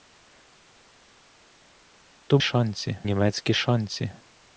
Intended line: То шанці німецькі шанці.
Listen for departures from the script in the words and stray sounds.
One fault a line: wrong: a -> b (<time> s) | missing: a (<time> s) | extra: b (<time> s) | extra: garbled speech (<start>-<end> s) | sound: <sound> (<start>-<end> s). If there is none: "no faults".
no faults